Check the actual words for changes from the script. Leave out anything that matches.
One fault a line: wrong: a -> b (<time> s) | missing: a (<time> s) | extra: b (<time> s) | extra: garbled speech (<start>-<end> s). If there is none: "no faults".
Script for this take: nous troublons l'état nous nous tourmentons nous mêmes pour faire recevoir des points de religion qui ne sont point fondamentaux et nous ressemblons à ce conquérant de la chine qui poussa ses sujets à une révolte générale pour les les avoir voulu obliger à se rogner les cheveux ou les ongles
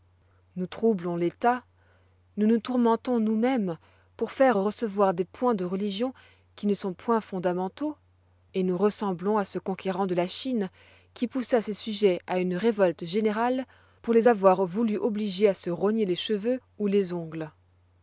missing: les (14.3 s)